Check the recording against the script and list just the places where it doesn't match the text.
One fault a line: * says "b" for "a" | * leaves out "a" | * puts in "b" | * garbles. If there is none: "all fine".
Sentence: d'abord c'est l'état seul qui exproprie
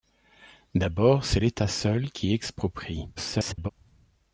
* garbles